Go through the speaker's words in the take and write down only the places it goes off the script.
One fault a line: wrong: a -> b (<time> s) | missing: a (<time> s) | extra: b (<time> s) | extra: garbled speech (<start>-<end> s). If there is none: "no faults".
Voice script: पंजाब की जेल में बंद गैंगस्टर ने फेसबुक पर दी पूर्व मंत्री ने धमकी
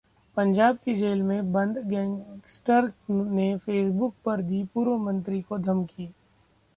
wrong: ने -> को (5.4 s)